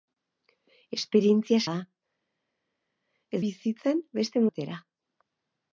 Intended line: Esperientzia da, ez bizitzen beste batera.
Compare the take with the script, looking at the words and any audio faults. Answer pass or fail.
pass